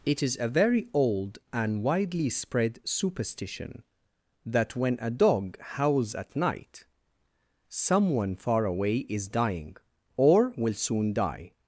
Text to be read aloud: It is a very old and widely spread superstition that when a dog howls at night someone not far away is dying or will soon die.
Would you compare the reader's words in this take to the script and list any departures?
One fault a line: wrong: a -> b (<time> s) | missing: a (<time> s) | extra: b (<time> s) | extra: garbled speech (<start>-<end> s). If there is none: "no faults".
missing: not (8.4 s)